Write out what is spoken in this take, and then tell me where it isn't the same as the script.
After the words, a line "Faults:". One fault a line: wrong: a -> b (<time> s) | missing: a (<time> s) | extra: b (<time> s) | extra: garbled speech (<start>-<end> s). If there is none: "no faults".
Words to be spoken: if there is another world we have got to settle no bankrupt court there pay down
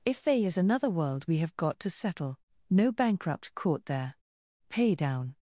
if they is another world we have got to settle no bankrupt court there pay down
Faults:
wrong: there -> they (0.2 s)